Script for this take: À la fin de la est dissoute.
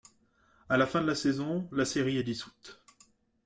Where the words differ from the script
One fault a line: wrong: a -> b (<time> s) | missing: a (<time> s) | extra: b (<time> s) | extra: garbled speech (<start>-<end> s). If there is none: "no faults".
extra: saison la série (1.1 s)